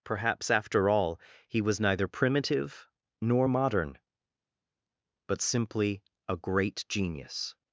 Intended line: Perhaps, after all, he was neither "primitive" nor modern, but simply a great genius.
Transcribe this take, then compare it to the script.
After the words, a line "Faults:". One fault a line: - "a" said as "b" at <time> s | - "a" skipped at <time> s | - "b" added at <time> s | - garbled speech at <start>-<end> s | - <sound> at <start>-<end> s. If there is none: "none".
Perhaps, after all, he was neither "primitive" nor modern, but simply a great genius.
Faults:
none